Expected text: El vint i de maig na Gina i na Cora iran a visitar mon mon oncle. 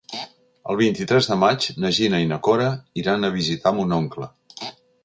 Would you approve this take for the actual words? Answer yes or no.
no